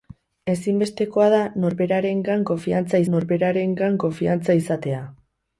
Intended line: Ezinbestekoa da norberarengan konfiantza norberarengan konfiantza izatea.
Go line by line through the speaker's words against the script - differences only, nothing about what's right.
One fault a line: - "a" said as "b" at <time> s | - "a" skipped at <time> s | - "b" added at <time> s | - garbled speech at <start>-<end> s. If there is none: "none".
none